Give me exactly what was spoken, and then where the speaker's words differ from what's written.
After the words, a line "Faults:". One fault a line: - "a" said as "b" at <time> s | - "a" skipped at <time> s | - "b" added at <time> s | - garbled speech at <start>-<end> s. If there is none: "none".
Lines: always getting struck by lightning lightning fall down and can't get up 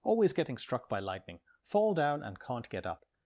always getting struck by lightning fall down and can't get up
Faults:
- "lightning" skipped at 1.4 s